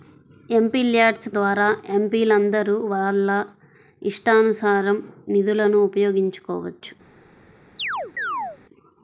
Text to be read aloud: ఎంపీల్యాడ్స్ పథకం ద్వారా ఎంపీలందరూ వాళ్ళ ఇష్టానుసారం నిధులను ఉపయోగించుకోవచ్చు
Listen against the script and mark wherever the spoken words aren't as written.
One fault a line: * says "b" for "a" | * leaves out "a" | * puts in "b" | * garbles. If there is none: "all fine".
* leaves out "పథకం"